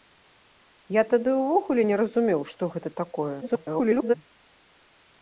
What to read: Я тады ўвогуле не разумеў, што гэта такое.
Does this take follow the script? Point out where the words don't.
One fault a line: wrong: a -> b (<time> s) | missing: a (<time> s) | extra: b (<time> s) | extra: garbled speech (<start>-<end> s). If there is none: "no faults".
extra: garbled speech (3.4-4.2 s)